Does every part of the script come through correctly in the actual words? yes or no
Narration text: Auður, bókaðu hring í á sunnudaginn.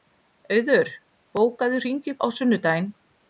yes